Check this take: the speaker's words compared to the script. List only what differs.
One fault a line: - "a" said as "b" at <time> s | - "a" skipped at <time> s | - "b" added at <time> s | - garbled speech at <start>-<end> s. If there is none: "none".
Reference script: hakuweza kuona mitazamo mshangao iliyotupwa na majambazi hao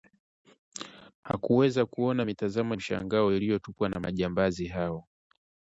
none